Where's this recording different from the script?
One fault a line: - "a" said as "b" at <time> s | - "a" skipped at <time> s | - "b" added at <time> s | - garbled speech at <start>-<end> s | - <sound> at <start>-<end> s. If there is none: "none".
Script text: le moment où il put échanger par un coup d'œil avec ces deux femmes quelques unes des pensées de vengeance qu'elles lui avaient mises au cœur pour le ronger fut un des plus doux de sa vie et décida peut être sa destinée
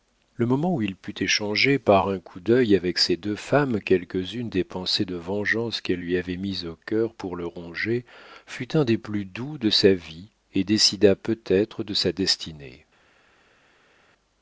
- "de" added at 11.8 s